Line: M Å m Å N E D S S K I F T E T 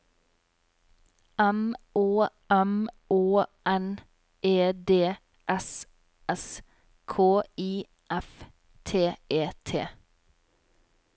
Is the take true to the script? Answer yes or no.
yes